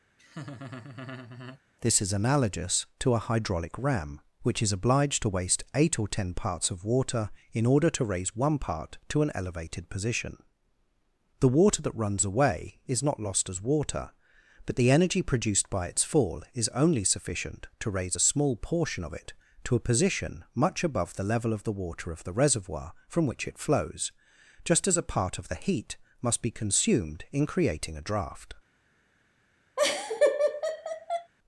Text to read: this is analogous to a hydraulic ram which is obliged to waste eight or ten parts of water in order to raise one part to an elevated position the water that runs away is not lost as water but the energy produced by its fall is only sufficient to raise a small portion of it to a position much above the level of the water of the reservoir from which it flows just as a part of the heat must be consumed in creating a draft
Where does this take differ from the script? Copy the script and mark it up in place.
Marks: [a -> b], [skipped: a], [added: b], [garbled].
this is analogous to a hydraulic ram which is obliged to waste eight or ten parts of water in order to raise one part to an elevated position the water that runs away is not lost as water but the energy produced by its fall is only sufficient to raise a small portion of it to a position much above the level of the water of the reservoir from which it flows just as a part of the heat must be consumed in creating a draft